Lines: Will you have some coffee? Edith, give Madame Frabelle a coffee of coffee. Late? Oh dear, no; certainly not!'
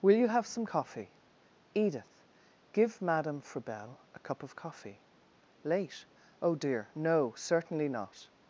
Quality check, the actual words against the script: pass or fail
fail